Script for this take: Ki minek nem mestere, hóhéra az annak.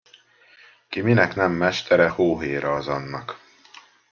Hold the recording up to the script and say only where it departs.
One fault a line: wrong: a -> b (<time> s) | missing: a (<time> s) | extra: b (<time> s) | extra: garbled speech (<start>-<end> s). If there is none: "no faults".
no faults